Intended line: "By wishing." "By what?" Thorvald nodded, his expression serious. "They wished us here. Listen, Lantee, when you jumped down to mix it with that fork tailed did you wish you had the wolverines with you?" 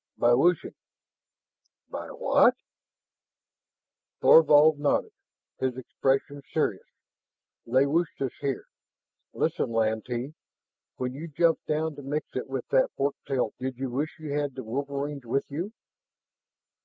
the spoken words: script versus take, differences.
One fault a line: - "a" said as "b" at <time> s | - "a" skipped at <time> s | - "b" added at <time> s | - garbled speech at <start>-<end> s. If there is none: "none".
none